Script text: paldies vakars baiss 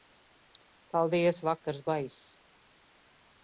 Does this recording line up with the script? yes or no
yes